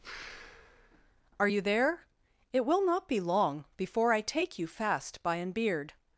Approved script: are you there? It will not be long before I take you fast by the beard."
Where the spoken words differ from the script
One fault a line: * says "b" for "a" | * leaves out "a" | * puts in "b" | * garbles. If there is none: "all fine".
* says "an" for "the"